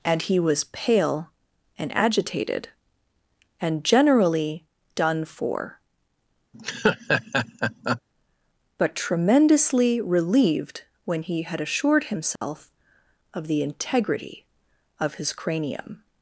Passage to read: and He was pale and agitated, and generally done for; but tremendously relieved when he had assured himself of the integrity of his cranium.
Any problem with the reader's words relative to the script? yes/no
no